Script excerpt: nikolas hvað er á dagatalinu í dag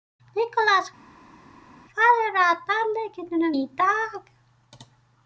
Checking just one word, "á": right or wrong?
right